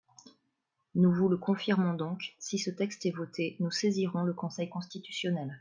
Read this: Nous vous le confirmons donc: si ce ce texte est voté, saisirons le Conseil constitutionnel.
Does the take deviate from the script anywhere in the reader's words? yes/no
yes